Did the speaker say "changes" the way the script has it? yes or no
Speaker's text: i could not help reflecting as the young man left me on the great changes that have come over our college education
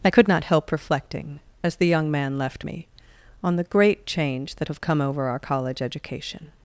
no